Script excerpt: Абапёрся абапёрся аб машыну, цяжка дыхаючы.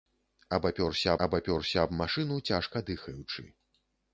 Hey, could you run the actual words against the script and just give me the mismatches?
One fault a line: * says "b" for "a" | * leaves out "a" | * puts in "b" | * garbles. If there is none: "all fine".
all fine